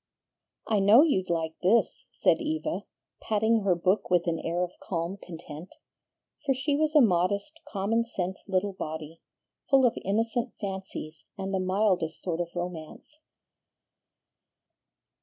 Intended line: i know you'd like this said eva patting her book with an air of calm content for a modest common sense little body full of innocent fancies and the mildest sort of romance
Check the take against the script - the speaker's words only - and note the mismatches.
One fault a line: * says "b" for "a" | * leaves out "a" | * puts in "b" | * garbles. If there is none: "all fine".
* puts in "she was"